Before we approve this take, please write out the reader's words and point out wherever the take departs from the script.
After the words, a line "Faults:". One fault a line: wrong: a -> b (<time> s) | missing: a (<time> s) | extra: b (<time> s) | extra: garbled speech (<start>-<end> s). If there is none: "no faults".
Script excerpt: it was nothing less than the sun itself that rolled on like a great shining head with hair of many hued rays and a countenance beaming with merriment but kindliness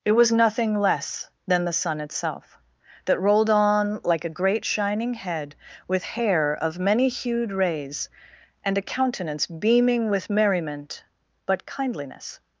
it was nothing less than the sun itself that rolled on like a great shining head with hair of many hued rays and a countenance beaming with merriment but kindliness
Faults:
no faults